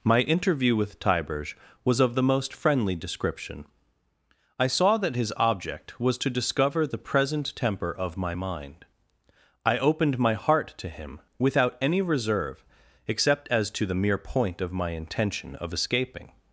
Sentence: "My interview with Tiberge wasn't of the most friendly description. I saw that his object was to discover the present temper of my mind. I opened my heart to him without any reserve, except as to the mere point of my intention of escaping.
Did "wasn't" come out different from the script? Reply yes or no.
yes